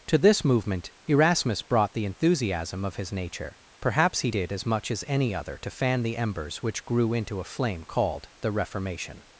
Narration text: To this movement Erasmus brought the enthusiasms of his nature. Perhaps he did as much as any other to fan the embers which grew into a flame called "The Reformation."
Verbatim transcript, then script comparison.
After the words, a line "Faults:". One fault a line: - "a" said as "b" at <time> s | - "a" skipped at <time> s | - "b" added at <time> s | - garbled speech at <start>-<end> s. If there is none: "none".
To this movement Erasmus brought the enthusiasm of his nature. Perhaps he did as much as any other to fan the embers which grew into a flame called "The Reformation."
Faults:
- "enthusiasms" said as "enthusiasm" at 2.0 s